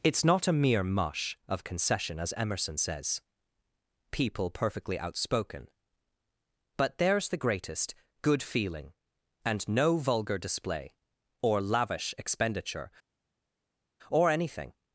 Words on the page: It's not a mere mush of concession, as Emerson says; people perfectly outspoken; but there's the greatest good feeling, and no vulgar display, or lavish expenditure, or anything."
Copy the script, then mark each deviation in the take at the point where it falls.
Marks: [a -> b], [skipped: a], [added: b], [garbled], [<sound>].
It's not a mere mush of concession, as Emerson says; people perfectly outspoken; but there's the greatest good feeling, and no vulgar display, or lavish expenditure, or anything."